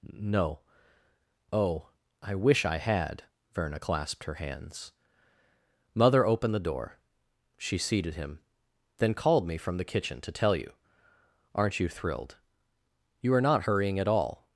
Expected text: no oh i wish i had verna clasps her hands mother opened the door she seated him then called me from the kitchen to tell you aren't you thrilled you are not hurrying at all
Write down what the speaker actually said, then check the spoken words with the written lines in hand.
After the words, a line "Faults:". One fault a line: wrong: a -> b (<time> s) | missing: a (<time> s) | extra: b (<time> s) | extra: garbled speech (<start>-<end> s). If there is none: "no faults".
no oh i wish i had verna clasped her hands mother opened the door she seated him then called me from the kitchen to tell you aren't you thrilled you are not hurrying at all
Faults:
wrong: clasps -> clasped (3.8 s)